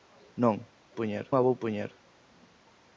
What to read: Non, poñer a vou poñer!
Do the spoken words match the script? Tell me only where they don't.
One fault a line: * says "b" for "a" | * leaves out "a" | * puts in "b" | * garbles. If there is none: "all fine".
all fine